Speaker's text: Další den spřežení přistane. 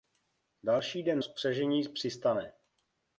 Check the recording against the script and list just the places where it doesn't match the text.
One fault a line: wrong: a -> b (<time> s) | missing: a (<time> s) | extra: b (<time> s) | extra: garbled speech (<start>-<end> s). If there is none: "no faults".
no faults